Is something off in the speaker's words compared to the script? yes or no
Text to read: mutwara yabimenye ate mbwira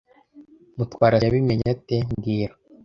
no